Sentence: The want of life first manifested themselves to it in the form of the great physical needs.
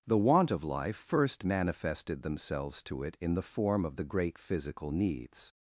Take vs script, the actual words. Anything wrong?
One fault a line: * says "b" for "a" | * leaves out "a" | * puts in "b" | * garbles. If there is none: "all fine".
all fine